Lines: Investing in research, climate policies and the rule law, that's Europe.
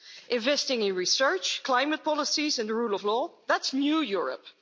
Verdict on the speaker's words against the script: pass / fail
fail